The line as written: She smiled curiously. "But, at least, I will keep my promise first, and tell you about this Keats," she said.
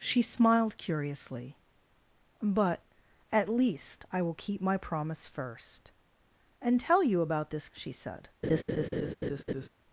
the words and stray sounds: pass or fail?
fail